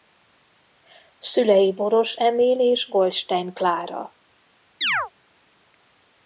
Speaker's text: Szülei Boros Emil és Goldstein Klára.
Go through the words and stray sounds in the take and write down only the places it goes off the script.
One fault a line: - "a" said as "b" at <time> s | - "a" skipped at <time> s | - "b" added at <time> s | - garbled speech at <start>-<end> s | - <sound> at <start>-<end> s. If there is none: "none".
- chirp at 4.8-5.1 s